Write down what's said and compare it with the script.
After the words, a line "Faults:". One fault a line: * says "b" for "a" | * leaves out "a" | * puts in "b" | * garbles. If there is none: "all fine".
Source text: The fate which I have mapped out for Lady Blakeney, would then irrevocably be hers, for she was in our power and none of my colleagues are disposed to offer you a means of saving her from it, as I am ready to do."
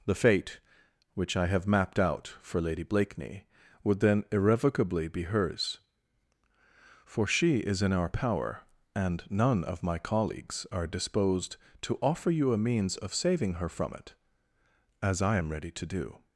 The fate which I have mapped out for Lady Blakeney, would then irrevocably be hers, for she is in our power and none of my colleagues are disposed to offer you a means of saving her from it, as I am ready to do."
Faults:
* says "is" for "was"